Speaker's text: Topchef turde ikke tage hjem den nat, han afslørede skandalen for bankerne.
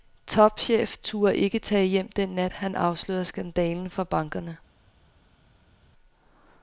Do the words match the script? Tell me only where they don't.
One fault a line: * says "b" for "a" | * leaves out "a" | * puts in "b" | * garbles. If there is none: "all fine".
all fine